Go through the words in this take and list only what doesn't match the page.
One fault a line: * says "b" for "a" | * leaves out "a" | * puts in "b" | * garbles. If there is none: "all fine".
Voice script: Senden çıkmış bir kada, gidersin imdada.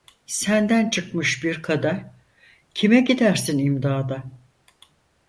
* puts in "kime"